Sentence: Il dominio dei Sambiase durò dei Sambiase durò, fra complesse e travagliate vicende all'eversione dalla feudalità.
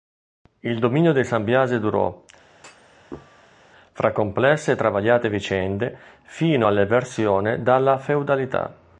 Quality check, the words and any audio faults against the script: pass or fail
fail